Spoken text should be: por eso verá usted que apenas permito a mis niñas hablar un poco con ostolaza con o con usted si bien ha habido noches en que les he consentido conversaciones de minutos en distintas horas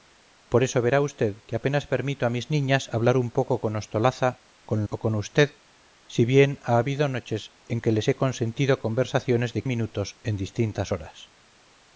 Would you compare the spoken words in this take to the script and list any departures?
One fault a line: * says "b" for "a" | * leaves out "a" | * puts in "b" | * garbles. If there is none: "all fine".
all fine